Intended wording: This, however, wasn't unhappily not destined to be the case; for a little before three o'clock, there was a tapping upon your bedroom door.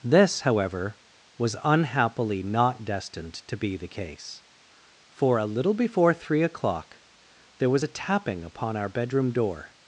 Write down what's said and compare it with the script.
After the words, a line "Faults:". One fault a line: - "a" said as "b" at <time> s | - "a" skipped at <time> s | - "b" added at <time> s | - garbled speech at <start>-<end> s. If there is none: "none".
This, however, was unhappily not destined to be the case; for a little before three o'clock, there was a tapping upon our bedroom door.
Faults:
- "wasn't" said as "was" at 1.4 s
- "your" said as "our" at 8.8 s